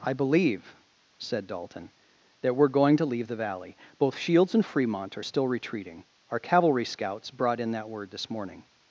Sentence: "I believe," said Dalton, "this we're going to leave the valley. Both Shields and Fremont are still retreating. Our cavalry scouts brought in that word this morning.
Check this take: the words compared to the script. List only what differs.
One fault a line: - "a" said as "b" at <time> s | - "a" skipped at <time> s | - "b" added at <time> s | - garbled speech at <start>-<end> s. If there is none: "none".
- "this" said as "that" at 2.4 s